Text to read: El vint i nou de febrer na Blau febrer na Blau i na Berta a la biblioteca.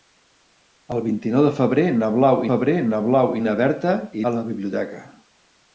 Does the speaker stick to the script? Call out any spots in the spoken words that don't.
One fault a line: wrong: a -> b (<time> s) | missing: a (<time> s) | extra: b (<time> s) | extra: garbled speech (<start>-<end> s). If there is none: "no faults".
no faults